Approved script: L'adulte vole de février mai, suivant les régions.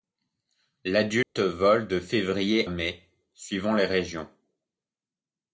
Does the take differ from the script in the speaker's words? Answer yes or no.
no